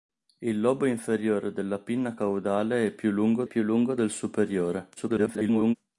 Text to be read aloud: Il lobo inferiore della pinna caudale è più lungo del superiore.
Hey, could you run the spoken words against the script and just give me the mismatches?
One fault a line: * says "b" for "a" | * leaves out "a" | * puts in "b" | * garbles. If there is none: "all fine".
* puts in "più lungo"
* garbles